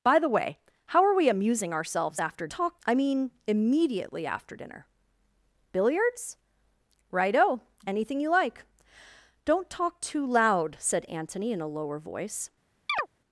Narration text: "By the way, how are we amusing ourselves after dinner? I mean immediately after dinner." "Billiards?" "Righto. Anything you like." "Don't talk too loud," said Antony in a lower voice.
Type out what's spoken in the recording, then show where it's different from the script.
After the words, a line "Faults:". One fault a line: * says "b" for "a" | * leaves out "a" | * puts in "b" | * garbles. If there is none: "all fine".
"By the way, how are we amusing ourselves after talk? I mean immediately after dinner." "Billiards?" "Righto. Anything you like." "Don't talk too loud," said Antony in a lower voice.
Faults:
* says "talk" for "dinner"